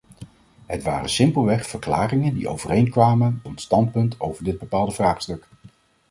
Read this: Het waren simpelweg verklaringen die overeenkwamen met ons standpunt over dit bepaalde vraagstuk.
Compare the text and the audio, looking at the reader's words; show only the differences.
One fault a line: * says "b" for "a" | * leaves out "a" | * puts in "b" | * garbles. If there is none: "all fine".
* leaves out "met"